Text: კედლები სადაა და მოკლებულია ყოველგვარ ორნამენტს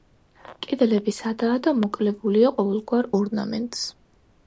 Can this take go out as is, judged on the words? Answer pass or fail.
pass